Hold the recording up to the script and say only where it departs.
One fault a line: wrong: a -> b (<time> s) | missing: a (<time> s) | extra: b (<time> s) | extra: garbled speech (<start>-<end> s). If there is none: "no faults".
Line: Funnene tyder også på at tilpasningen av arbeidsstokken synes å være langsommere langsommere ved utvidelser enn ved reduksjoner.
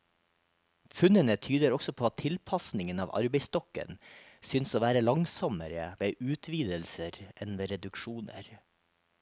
missing: langsommere (5.9 s)